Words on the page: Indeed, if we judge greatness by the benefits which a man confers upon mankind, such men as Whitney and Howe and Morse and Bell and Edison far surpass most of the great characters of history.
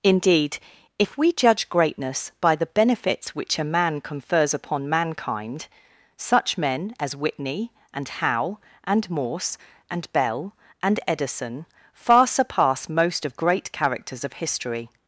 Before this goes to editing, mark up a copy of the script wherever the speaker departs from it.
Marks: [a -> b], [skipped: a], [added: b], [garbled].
Indeed, if we judge greatness by the benefits which a man confers upon mankind, such men as Whitney and Howe and Morse and Bell and Edison far surpass most of [skipped: the] great characters of history.